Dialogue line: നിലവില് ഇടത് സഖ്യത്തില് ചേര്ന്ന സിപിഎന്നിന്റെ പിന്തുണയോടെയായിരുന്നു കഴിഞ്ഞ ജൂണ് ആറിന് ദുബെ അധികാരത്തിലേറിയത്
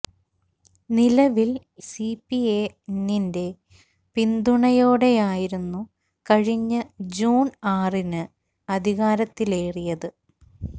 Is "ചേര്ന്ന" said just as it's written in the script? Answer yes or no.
no